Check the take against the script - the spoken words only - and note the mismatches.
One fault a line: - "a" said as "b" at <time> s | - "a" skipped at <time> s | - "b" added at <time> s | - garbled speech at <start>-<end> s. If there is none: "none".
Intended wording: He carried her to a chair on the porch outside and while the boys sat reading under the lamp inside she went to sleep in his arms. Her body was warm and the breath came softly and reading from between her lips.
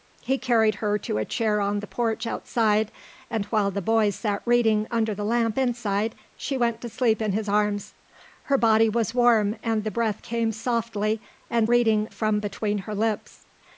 none